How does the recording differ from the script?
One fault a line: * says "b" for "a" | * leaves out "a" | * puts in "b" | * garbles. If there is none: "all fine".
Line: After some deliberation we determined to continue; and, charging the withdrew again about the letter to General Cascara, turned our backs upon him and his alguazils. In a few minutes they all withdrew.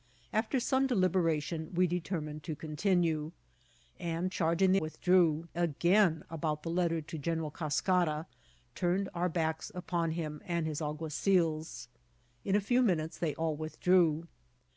all fine